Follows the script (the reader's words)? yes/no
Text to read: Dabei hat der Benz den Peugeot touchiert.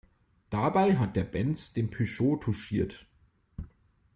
yes